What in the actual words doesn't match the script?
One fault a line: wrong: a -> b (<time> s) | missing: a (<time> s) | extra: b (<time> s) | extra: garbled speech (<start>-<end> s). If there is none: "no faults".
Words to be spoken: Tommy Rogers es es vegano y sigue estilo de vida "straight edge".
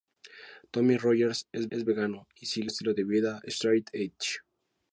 no faults